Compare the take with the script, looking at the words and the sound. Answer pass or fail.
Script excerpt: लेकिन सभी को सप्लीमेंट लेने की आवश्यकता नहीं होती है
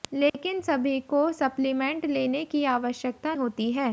fail